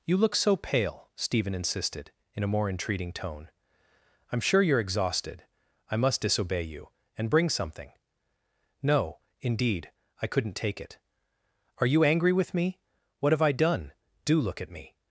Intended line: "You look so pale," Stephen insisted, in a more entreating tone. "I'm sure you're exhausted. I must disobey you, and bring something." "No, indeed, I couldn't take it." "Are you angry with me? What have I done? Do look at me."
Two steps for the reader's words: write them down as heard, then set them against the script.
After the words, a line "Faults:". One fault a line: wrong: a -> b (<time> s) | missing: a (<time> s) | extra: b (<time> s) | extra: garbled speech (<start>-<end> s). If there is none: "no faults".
"You look so pale," Stephen insisted, in a more entreating tone. "I'm sure you're exhausted. I must disobey you, and bring something." "No, indeed, I couldn't take it." "Are you angry with me? What have I done? Do look at me."
Faults:
no faults